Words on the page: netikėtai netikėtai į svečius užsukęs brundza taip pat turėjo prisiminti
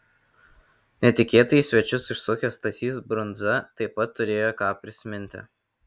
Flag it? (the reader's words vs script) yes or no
yes